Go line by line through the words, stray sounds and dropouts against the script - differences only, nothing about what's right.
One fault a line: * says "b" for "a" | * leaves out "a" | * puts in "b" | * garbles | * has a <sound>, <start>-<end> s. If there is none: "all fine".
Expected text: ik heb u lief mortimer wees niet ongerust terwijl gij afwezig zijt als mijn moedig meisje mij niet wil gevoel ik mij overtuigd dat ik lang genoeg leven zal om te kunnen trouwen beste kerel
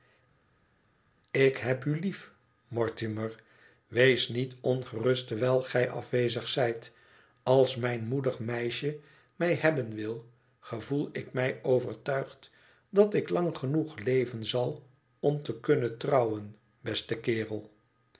* says "hebben" for "niet"